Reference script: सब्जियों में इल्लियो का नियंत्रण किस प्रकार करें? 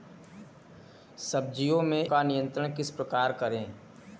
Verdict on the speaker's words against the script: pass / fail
fail